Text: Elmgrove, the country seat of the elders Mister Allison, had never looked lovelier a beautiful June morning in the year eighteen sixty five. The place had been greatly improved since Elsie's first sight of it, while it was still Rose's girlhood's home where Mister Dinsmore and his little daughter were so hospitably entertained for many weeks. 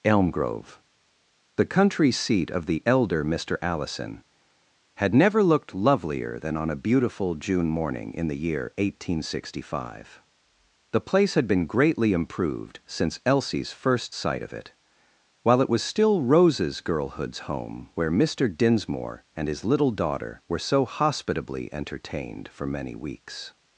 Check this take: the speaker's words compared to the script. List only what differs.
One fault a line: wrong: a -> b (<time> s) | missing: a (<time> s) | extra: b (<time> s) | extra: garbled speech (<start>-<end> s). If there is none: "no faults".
wrong: elders -> elder (2.9 s)
extra: than on (6.4 s)